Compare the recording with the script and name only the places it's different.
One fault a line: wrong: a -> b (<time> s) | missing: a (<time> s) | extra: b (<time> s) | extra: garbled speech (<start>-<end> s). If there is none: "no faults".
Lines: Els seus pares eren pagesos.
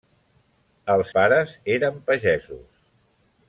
missing: seus (1.1 s)